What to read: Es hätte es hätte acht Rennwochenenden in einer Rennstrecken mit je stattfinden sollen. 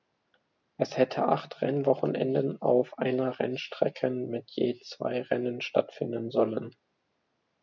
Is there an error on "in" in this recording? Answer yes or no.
yes